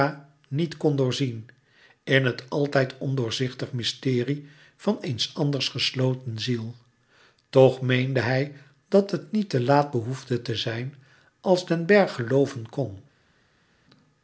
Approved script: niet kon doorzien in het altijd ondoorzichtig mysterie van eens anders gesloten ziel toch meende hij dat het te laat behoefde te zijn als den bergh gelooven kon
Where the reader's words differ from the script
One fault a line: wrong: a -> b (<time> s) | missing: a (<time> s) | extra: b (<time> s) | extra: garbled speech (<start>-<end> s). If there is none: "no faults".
extra: niet (9.3 s)